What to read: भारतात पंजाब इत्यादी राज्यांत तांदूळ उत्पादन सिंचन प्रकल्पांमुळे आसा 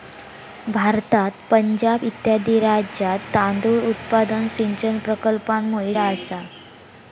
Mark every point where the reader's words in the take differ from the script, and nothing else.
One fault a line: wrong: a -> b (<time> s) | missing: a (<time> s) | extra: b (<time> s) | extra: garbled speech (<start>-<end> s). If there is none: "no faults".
no faults